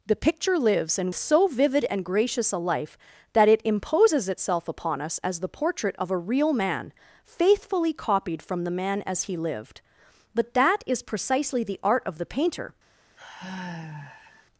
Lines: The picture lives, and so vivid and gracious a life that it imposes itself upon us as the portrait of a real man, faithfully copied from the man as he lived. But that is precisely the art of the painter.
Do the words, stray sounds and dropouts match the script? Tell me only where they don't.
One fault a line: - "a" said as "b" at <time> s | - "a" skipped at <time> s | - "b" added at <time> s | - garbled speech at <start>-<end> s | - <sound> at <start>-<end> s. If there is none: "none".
- sigh at 13.2-14.5 s